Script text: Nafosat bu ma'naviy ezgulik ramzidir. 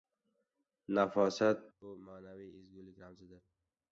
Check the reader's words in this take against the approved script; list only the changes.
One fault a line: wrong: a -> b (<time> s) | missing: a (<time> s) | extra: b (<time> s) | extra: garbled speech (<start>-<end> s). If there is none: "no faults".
no faults